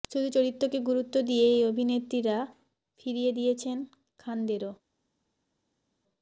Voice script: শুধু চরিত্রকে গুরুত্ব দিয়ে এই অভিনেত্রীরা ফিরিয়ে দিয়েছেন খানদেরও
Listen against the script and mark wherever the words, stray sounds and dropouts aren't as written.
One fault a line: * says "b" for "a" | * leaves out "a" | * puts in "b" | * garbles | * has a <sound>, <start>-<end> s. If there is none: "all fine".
all fine